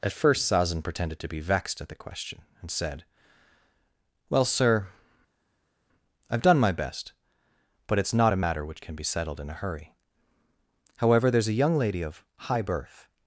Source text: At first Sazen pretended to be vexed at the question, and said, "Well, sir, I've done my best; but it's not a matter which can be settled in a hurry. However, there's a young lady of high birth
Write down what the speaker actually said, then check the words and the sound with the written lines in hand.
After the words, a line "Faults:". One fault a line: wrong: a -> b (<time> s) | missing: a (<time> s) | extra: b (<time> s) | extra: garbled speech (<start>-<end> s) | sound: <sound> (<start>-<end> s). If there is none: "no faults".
At first Sazen pretended to be vexed at the question, and said, "Well, sir, I've done my best; but it's not a matter which can be settled in a hurry. However, there's a young lady of high birth
Faults:
no faults